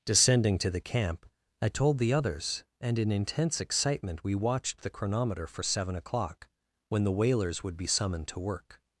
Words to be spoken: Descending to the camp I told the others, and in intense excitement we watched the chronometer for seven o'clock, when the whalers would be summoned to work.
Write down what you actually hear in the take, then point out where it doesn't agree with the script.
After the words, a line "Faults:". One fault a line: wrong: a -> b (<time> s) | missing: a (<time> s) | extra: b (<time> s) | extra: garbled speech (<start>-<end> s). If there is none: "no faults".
Descending to the camp I told the others, and in intense excitement we watched the chronometer for seven o'clock, when the whalers would be summoned to work.
Faults:
no faults